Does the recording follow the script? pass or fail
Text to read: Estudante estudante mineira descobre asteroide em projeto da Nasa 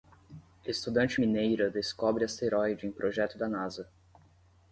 fail